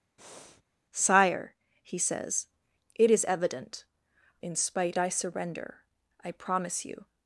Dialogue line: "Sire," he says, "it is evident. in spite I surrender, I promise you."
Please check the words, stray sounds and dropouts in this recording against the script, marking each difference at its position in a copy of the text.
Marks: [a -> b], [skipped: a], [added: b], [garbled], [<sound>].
[breath] "Sire," he says, "it is evident. in spite I surrender, I promise you."